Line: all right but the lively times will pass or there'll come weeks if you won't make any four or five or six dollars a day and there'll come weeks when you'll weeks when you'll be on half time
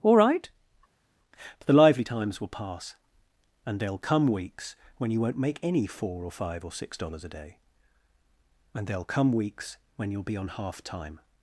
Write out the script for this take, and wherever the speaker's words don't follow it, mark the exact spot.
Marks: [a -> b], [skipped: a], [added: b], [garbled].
all right but the lively times will pass [or -> and] there'll come weeks [if -> when] you won't make any four or five or six dollars a day and there'll come weeks when you'll [skipped: weeks when you'll] be on half time